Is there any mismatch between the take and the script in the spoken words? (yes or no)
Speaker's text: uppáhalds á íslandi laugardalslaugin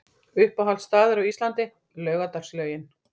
yes